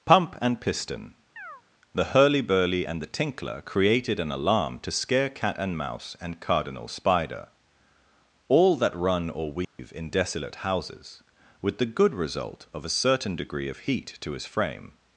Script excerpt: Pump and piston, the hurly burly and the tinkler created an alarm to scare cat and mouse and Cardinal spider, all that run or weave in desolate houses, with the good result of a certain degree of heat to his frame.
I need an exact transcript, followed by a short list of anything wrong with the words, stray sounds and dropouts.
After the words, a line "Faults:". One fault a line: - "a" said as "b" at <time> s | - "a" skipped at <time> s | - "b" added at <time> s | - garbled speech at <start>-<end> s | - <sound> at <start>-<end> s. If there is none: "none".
Pump and piston, the hurly burly and the tinkler created an alarm to scare cat and mouse and Cardinal spider, all that run or weave in desolate houses, with the good result of a certain degree of heat to his frame.
Faults:
- chirp at 1.4-1.6 s
- dropout at 9.6-9.8 s